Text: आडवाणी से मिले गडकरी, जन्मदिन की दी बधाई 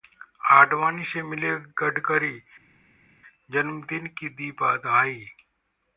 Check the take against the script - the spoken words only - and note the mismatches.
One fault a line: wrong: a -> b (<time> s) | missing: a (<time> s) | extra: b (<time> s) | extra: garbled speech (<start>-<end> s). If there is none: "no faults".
no faults